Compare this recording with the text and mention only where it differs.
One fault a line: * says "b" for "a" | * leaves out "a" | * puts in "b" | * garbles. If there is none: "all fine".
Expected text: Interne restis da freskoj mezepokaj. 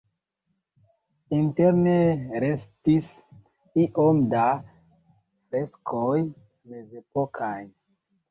* puts in "iom"